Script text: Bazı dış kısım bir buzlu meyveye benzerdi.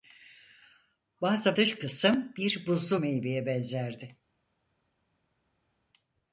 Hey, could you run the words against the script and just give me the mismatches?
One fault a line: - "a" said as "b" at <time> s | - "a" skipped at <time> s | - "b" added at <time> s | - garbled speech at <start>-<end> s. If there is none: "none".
none